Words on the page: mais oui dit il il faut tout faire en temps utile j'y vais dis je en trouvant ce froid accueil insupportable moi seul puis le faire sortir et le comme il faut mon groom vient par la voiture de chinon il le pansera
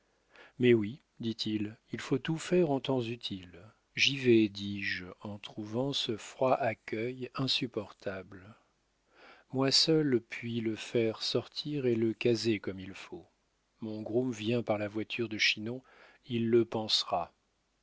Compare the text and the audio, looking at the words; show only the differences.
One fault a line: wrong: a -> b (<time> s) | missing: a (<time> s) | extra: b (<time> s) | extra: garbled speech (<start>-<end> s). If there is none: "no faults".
extra: caser (12.2 s)